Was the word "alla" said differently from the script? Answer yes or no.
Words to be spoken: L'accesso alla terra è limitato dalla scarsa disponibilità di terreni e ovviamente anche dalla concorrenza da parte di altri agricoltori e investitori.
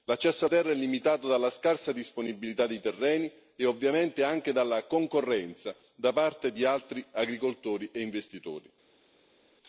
yes